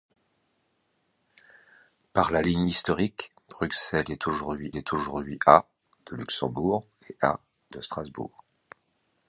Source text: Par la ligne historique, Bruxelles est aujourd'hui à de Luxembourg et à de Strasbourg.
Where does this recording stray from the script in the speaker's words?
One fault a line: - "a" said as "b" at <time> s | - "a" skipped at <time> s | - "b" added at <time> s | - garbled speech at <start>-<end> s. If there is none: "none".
- "est aujourd'hui" added at 4.7 s